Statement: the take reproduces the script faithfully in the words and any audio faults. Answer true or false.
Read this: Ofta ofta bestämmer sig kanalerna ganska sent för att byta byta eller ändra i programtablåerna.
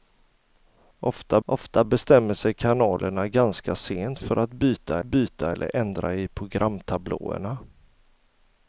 true